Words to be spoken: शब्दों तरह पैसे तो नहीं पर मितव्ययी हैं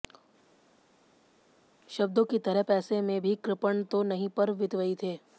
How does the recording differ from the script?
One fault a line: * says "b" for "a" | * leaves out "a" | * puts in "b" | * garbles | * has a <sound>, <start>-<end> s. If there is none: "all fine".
* puts in "की"
* puts in "में भी कृपण"
* says "थे" for "हैं"